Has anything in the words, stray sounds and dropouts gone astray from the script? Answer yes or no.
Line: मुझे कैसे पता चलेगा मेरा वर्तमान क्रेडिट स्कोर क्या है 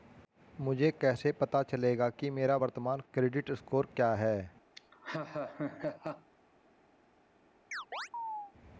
yes